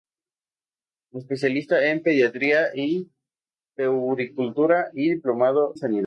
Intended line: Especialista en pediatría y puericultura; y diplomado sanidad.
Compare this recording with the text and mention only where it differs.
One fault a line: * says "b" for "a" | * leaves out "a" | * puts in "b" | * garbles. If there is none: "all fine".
all fine